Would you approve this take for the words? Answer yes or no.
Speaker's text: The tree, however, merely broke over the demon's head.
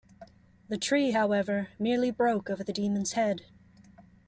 yes